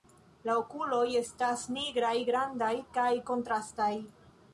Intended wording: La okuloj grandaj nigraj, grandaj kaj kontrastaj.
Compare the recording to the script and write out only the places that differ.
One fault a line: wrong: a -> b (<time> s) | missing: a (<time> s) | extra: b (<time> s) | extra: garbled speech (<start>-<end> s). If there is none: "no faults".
wrong: grandaj -> estas (1.2 s)